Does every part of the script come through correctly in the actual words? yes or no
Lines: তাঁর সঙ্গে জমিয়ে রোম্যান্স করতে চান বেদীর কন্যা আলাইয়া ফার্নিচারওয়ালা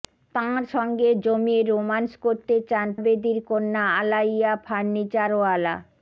yes